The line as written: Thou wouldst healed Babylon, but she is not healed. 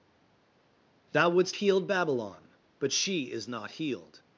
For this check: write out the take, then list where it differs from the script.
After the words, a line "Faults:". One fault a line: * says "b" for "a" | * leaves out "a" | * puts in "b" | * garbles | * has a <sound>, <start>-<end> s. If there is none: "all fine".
Thou wouldst healed Babylon, but she is not healed.
Faults:
all fine